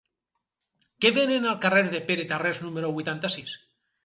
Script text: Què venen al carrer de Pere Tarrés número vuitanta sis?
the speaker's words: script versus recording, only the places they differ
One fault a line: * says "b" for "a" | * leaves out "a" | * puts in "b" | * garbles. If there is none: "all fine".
all fine